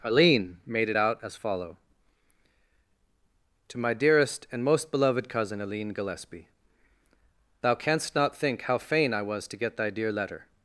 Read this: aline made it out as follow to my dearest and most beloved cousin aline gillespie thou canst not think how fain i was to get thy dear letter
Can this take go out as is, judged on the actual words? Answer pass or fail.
pass